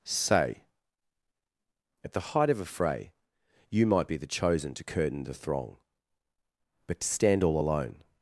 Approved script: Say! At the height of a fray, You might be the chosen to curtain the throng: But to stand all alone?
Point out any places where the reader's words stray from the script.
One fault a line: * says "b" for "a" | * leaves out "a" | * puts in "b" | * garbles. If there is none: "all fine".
all fine